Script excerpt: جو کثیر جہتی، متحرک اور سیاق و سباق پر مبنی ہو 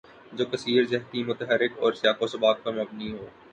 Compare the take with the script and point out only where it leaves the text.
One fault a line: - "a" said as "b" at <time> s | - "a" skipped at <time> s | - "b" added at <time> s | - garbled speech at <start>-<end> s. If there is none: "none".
none